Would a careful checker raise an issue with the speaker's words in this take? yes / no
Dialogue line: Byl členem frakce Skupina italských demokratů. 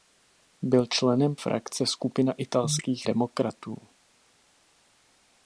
no